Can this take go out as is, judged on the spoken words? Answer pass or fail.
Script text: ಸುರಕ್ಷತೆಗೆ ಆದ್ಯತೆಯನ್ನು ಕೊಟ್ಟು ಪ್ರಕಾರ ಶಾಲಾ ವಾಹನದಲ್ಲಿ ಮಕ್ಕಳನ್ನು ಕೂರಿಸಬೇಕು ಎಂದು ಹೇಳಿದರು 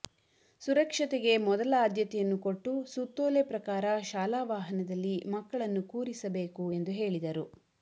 fail